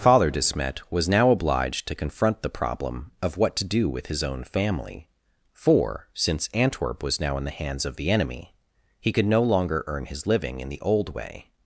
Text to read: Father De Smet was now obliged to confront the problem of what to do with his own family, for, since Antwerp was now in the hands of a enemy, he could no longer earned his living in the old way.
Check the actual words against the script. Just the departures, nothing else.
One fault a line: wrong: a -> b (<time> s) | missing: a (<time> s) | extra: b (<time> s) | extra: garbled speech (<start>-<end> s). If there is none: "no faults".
wrong: a -> the (8.0 s)
wrong: earned -> earn (9.8 s)